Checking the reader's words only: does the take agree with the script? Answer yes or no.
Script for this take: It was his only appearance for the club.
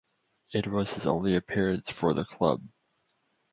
yes